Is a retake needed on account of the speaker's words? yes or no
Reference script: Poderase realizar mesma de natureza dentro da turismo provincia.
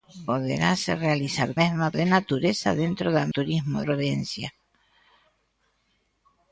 no